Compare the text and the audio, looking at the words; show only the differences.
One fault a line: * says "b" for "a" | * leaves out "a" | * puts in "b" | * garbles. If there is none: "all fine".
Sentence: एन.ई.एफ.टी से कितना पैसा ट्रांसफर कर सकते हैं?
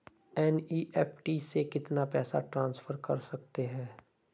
all fine